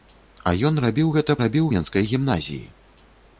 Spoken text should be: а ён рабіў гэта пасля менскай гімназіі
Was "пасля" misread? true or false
true